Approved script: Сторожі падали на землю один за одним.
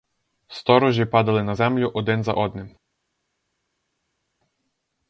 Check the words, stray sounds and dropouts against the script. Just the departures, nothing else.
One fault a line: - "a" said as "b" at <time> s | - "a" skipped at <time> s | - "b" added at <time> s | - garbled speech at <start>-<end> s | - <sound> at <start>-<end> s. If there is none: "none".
none